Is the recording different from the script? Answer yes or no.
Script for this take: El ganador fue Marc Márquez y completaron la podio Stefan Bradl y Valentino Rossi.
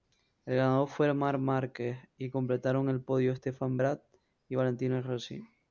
yes